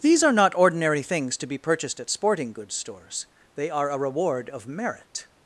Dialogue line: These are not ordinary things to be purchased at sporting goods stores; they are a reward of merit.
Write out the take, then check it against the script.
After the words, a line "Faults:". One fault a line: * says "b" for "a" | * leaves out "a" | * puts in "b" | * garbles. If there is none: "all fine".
These are not ordinary things to be purchased at sporting goods stores; they are a reward of merit.
Faults:
all fine